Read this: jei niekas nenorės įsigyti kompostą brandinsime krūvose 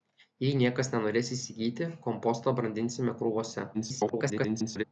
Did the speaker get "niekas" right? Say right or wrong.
right